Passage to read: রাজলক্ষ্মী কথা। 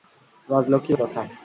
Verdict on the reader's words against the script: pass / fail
pass